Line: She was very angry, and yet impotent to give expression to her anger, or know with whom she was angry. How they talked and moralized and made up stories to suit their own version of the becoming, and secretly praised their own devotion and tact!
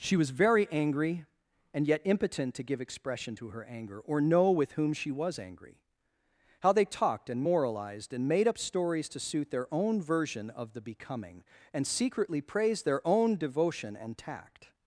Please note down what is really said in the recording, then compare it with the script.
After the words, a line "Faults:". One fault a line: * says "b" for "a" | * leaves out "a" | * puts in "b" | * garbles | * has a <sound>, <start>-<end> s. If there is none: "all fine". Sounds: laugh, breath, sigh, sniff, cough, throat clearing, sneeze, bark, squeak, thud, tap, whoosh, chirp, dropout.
She was very angry, and yet impotent to give expression to her anger, or know with whom she was angry. How they talked and moralized and made up stories to suit their own version of the becoming, and secretly praised their own devotion and tact!
Faults:
all fine